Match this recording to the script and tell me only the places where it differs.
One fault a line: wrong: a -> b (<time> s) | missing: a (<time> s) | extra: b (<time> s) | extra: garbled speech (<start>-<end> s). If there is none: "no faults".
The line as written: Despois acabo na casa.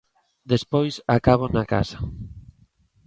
no faults